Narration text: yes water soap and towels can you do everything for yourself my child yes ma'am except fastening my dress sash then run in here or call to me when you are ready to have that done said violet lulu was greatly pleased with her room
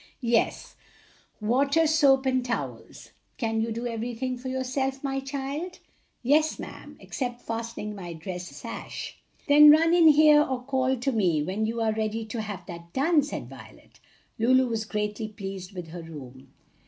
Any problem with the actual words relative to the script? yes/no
no